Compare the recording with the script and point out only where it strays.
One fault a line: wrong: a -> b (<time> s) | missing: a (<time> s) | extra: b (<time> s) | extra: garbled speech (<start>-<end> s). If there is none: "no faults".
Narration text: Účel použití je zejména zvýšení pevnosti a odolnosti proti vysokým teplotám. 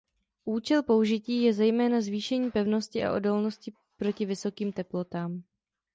no faults